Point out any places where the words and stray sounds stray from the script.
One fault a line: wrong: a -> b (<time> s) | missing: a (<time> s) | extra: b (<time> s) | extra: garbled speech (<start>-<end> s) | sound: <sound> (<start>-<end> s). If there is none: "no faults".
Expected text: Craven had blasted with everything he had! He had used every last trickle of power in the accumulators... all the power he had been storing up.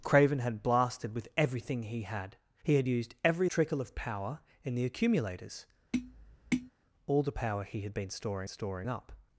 missing: last (3.5 s)
sound: tap (5.9-6.7 s)
extra: storing (8.4 s)